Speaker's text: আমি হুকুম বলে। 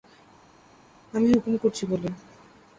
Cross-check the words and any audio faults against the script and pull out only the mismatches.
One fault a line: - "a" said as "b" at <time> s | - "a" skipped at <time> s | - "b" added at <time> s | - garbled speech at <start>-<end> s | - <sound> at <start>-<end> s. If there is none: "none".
- "করছি" added at 1.6 s